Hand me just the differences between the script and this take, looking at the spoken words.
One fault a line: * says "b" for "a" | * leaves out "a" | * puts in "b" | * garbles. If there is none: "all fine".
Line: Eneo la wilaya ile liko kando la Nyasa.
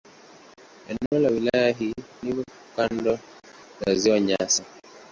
* says "hii" for "ile"
* puts in "Ziwa"